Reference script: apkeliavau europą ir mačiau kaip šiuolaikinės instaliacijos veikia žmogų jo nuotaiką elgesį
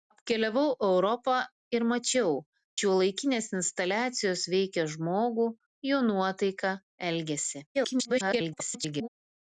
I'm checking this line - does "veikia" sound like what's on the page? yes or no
yes